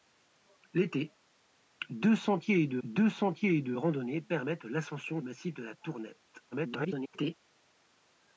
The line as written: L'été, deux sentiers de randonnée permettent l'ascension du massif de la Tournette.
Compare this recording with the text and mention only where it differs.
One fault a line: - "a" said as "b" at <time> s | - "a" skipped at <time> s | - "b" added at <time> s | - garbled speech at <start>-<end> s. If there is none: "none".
- "deux sentiers de" added at 2.8 s
- "du" skipped at 5.2 s
- garbled speech at 6.5-7.4 s